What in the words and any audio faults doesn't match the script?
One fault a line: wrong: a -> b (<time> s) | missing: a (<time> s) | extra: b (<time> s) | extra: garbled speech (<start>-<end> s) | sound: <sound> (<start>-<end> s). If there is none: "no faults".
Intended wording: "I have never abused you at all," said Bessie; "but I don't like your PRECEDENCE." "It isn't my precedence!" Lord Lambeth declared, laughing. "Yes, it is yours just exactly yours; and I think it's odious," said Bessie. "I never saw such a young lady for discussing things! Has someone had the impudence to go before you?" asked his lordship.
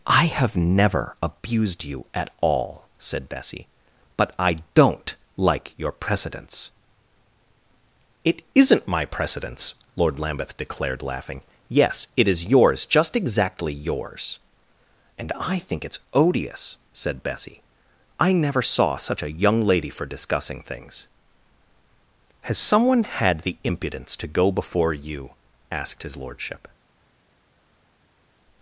no faults